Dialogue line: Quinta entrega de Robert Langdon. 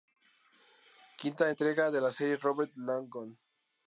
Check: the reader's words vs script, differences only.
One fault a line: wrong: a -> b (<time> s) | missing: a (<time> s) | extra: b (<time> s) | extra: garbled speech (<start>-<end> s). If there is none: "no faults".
extra: la serie (2.0 s)